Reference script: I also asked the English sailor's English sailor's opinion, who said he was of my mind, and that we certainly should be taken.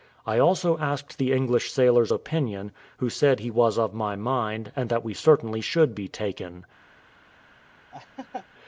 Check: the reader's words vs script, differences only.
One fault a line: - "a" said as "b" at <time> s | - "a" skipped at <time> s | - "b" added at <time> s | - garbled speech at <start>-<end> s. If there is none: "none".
- "English sailor's" skipped at 2.1 s